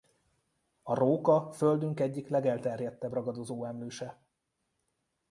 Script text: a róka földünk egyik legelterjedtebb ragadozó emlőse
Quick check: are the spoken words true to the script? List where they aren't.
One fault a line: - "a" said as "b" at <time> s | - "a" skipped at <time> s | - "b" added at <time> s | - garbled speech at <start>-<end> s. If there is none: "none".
none